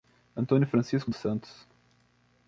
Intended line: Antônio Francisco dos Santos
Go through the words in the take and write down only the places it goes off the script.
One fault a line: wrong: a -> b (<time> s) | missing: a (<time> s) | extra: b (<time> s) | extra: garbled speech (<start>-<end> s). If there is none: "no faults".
no faults